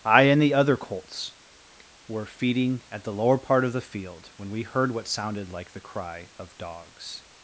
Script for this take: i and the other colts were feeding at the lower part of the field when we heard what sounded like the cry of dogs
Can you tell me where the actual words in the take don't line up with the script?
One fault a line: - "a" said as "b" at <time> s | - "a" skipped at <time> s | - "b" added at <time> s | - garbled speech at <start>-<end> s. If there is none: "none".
none